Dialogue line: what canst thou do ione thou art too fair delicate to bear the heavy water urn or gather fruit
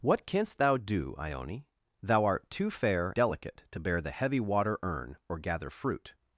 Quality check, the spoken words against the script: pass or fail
pass